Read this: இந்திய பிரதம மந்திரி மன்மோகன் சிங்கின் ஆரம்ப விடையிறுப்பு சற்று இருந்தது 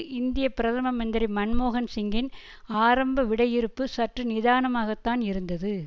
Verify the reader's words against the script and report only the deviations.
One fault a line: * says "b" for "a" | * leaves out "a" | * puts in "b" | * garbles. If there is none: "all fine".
* puts in "நிதானமாகத்தான்"